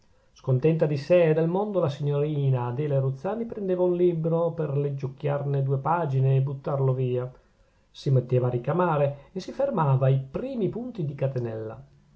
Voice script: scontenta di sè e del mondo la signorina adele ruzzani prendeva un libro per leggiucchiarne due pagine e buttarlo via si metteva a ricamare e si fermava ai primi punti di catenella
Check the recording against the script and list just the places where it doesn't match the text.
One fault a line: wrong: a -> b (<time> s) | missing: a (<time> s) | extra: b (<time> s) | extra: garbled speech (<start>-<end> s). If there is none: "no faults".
no faults